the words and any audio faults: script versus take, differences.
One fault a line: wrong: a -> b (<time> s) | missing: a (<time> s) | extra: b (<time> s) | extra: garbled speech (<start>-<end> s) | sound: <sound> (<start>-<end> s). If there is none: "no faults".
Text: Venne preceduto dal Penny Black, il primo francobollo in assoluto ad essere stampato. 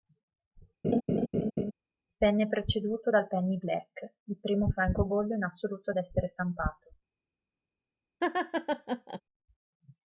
sound: laugh (0.8-1.7 s)
sound: laugh (8.2-9.2 s)